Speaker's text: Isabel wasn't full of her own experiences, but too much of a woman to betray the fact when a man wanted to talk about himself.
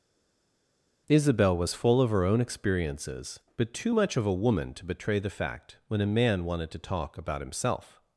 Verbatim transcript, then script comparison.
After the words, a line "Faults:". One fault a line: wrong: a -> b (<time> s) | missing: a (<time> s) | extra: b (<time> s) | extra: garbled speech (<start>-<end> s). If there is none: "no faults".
Isabel was full of her own experiences, but too much of a woman to betray the fact when a man wanted to talk about himself.
Faults:
wrong: wasn't -> was (1.5 s)